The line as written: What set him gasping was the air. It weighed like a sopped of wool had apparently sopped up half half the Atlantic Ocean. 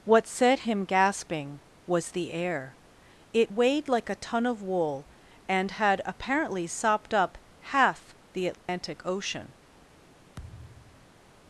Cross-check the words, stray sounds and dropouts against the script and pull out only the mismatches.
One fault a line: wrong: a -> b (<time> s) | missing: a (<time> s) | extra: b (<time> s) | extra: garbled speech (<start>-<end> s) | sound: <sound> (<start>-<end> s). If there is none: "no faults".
wrong: sopped -> ton (4.1 s)
extra: and (5.5 s)
missing: half (8.1 s)
sound: dropout (8.5-8.7 s)
sound: thud (10.4-11.2 s)